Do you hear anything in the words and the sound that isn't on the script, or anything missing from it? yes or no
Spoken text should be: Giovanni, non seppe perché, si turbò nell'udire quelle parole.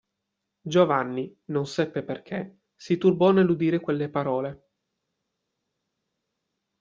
no